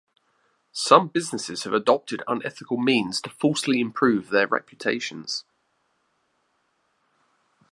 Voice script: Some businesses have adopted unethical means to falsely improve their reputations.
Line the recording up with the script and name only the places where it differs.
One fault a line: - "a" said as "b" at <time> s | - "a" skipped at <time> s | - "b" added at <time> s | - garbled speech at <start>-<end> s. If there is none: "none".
none